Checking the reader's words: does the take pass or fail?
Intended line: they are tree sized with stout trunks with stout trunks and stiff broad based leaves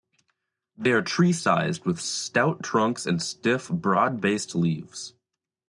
fail